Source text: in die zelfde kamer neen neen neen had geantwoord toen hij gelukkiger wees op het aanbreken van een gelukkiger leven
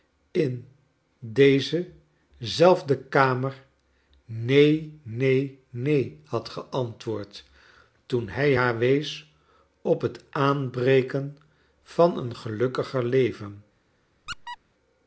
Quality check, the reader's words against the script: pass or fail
fail